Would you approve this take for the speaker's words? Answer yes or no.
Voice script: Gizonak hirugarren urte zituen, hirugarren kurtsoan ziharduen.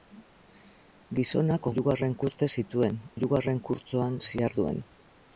yes